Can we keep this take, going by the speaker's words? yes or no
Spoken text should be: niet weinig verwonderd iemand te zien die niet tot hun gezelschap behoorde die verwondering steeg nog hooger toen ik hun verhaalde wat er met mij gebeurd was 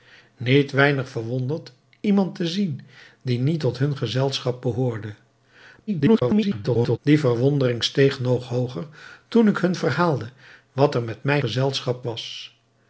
no